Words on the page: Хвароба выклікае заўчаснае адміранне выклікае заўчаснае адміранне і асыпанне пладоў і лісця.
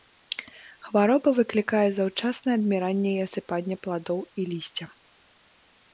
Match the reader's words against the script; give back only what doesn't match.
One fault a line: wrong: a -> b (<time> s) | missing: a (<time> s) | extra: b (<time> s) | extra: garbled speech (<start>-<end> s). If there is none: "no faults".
missing: выклікае заўчаснае адміранне (3.1 s)